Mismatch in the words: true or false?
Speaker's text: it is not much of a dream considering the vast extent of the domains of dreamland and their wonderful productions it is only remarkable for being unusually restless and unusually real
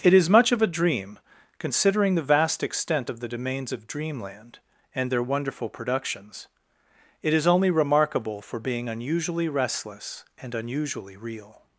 true